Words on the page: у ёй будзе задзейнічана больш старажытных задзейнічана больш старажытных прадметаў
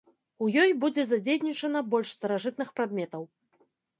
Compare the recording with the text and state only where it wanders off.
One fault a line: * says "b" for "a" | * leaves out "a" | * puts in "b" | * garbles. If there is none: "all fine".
* leaves out "задзейнічана больш старажытных"